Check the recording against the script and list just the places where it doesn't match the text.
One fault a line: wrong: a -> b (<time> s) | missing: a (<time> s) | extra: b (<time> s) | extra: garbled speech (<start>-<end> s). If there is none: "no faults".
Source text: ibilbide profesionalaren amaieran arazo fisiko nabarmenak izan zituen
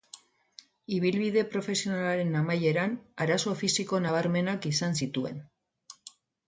no faults